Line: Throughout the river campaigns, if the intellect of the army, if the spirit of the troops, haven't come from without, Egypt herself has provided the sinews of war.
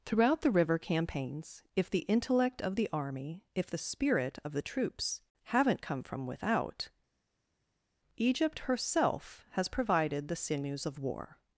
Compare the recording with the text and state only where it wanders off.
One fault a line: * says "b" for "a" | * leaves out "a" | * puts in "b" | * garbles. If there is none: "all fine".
all fine